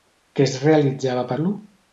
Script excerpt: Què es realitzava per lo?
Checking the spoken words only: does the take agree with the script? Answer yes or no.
yes